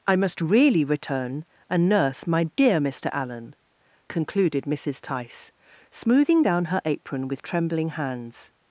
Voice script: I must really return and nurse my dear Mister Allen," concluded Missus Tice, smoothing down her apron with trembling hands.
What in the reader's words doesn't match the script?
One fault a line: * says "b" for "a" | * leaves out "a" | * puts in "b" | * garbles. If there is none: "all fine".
all fine